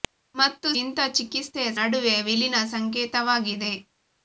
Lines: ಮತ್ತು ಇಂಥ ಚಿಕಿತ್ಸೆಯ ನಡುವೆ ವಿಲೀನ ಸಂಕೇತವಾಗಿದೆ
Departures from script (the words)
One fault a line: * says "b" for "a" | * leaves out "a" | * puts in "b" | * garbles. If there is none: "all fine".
all fine